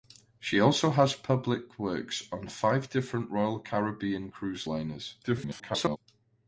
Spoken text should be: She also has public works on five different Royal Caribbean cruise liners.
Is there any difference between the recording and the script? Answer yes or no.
yes